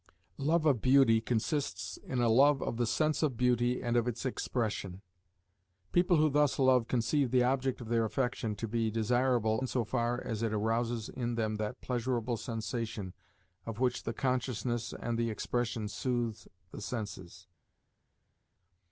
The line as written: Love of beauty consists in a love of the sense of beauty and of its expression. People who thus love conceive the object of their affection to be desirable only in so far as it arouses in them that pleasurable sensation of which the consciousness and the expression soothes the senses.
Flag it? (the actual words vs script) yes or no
yes